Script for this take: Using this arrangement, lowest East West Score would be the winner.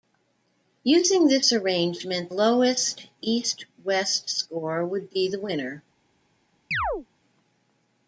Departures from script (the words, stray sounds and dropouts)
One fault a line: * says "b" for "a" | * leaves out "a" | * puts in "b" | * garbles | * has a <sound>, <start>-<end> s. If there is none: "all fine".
* has a chirp, 6.7-7.1 s